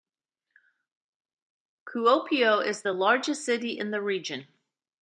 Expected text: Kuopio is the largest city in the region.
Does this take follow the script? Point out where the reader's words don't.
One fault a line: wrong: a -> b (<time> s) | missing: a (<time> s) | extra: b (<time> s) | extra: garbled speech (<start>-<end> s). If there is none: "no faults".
no faults